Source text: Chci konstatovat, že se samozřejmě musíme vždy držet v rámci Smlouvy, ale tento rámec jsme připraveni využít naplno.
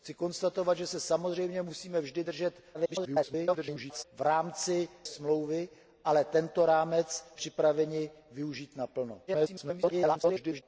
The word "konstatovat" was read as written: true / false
true